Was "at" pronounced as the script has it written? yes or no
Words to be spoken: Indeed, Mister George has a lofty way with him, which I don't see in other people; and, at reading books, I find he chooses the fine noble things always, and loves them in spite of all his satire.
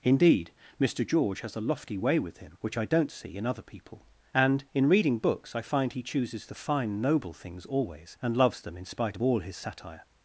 no